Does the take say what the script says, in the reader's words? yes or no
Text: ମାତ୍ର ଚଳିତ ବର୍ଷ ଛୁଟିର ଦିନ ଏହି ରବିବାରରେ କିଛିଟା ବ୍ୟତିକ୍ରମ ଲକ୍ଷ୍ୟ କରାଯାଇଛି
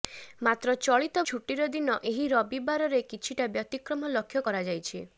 no